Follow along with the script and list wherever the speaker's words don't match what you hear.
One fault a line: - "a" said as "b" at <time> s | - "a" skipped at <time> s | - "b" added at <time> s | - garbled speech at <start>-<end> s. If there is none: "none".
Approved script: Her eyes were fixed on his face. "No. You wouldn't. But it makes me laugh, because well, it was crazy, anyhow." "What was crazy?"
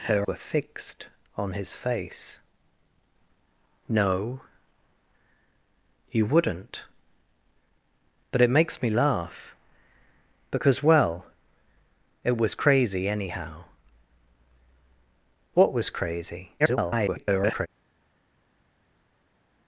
- "eyes" skipped at 0.3 s
- garbled speech at 16.6-17.7 s